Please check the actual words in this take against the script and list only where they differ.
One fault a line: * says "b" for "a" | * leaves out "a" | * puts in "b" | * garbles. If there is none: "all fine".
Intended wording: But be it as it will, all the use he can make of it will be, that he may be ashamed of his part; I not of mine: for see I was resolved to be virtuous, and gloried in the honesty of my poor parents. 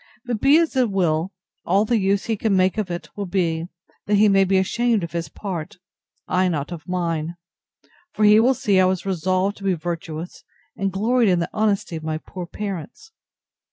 * puts in "he will"